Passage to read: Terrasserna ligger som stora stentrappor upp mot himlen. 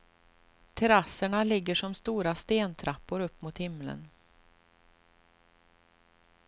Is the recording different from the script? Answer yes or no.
no